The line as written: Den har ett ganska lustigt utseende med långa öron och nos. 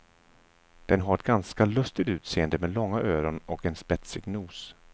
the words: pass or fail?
fail